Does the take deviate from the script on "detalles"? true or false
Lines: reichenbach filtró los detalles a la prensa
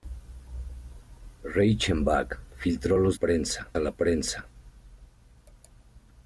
true